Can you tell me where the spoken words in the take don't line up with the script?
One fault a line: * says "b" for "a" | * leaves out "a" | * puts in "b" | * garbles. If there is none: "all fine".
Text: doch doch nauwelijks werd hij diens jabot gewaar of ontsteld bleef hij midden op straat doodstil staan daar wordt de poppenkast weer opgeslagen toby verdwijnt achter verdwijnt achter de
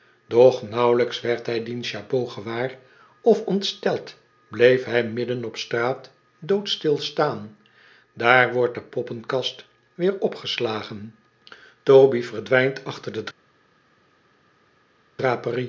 * leaves out "doch"
* leaves out "verdwijnt achter"